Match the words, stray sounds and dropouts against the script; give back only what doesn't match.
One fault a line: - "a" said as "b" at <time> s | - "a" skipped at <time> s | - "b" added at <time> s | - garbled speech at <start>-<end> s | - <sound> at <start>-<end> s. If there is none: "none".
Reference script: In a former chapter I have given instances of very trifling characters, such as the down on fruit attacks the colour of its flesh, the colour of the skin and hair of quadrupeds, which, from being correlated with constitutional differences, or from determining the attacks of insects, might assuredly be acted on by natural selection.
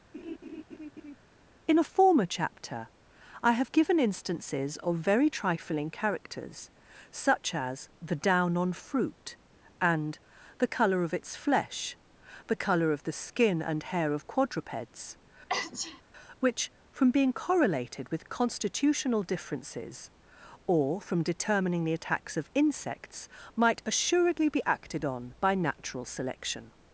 - laugh at 0.1-1.2 s
- "attacks" said as "and" at 9.8 s
- sneeze at 15.5-16.0 s